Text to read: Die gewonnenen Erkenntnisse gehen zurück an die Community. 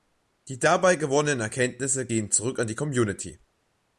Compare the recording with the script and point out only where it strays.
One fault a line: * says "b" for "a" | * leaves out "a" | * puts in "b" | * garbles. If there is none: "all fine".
* puts in "dabei"